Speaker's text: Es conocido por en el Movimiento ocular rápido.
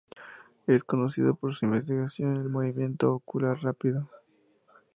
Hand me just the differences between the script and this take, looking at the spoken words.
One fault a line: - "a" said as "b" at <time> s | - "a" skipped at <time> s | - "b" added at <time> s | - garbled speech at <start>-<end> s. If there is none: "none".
- "su investigación" added at 1.5 s